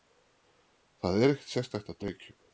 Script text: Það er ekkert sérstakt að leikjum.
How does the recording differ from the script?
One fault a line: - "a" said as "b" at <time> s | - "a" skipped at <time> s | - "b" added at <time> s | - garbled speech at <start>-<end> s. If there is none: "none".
none